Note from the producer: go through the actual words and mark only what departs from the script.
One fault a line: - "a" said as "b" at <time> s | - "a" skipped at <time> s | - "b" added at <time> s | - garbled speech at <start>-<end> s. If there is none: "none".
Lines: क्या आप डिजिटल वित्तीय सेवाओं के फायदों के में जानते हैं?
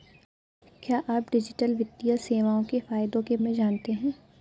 none